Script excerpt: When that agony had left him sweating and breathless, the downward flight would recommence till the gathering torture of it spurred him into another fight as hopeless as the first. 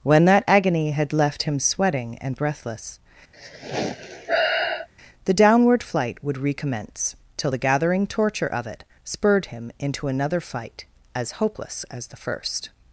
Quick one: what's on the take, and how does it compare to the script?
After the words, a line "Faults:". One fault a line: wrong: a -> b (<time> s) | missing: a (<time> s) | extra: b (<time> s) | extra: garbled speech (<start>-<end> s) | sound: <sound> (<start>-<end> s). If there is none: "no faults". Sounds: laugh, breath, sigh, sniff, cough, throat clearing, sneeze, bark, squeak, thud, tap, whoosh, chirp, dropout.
When that agony had left him sweating and breathless, the downward flight would recommence till the gathering torture of it spurred him into another fight as hopeless as the first.
Faults:
sound: sigh (3.3-4.9 s)